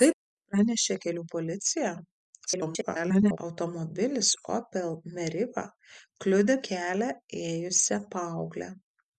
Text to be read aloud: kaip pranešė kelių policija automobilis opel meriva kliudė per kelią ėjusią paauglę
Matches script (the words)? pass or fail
fail